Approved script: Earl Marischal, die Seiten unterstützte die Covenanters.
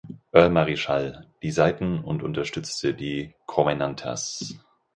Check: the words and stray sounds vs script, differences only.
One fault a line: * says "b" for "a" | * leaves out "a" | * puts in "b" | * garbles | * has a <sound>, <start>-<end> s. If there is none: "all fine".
* puts in "und"